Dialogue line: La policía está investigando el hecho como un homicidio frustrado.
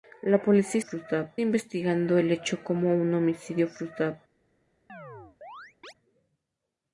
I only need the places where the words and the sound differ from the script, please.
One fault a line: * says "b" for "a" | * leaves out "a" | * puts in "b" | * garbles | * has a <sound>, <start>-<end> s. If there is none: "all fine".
* says "frustrado" for "está"
* has a chirp, 4.9-5.9 s